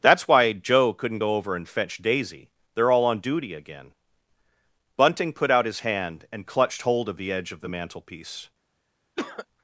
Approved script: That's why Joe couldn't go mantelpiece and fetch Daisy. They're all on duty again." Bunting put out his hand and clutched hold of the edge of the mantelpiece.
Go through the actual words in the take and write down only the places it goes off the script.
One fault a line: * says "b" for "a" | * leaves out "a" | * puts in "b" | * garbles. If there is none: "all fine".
* says "over" for "mantelpiece"